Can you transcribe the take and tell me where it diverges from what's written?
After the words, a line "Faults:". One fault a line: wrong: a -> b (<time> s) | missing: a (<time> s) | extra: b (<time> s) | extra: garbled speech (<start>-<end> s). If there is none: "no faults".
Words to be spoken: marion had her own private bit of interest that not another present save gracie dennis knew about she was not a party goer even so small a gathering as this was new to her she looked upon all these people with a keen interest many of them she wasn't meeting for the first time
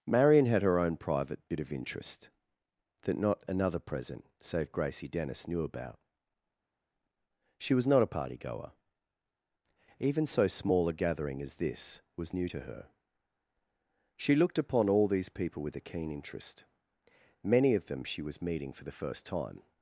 marion had her own private bit of interest that not another present save gracie dennis knew about she was not a party goer even so small a gathering as this was new to her she looked upon all these people with a keen interest many of them she was meeting for the first time
Faults:
wrong: wasn't -> was (18.2 s)